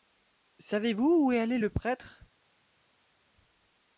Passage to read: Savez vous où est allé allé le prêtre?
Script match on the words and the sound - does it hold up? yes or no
no